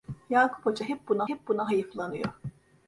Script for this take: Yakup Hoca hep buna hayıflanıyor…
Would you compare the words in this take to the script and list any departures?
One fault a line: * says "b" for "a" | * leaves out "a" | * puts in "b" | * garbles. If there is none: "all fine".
* puts in "hep buna"